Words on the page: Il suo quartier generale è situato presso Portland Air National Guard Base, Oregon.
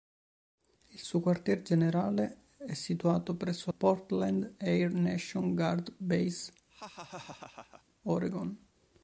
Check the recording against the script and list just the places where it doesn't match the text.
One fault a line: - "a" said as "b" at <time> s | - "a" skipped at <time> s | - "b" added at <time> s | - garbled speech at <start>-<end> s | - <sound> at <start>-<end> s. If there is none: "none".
- laugh at 6.7-7.8 s